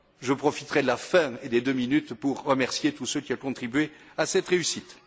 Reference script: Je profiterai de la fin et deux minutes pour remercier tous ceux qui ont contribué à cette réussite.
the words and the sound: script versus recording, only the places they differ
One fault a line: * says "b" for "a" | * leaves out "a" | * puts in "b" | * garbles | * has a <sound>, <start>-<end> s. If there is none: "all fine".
* puts in "des"